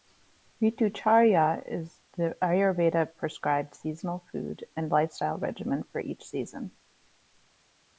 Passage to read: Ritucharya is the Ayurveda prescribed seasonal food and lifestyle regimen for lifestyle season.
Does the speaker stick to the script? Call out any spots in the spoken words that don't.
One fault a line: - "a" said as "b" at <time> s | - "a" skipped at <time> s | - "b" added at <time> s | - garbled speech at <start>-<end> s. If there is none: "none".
- "lifestyle" said as "each" at 6.0 s